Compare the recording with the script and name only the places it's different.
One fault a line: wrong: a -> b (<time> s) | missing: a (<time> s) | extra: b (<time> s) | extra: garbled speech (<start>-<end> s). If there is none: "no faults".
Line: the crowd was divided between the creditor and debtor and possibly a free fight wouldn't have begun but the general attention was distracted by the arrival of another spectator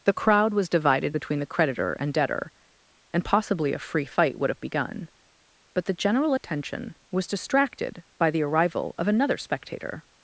wrong: wouldn't -> would (4.4 s)